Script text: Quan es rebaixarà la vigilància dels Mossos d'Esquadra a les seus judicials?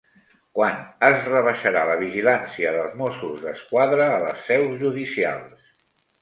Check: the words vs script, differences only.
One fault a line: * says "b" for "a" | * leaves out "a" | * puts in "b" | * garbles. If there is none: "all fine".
all fine